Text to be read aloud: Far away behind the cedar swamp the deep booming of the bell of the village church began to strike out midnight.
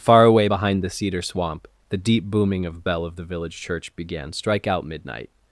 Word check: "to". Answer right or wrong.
wrong